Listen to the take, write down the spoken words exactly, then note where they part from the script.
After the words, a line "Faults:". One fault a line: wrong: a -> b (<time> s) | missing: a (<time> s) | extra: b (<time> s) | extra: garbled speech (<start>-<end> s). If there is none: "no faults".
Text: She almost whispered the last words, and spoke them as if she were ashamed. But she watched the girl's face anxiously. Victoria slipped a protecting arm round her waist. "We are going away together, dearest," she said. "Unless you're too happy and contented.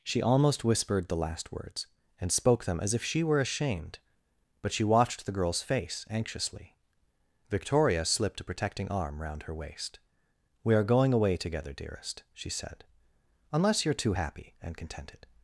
She almost whispered the last words, and spoke them as if she were ashamed. But she watched the girl's face anxiously. Victoria slipped a protecting arm round her waist. "We are going away together, dearest," she said. "Unless you're too happy and contented.
Faults:
no faults